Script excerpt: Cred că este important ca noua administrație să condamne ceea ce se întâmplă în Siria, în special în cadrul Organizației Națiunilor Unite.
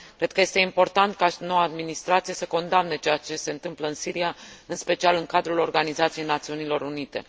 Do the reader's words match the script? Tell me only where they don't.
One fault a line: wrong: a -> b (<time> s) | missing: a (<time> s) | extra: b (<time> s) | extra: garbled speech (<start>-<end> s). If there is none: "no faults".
no faults